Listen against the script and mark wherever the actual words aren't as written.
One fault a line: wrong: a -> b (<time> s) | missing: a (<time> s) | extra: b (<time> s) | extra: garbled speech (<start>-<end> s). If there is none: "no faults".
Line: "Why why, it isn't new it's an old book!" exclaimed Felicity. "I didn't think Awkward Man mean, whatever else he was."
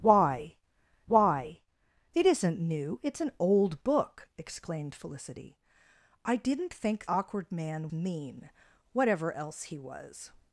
no faults